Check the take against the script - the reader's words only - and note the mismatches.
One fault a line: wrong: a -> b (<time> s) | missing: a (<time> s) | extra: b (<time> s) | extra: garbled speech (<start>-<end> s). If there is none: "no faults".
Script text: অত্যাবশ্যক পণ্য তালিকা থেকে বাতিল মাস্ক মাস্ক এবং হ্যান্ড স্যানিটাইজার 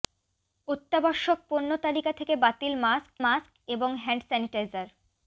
no faults